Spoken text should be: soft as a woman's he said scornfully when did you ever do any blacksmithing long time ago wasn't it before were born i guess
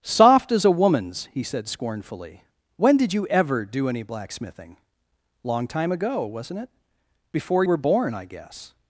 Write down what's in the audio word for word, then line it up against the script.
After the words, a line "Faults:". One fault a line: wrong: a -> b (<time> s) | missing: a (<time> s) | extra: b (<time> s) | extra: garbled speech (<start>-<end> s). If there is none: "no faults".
soft as a woman's he said scornfully when did you ever do any blacksmithing long time ago wasn't it before were born i guess
Faults:
no faults